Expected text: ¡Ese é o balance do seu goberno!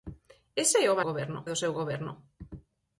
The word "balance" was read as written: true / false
false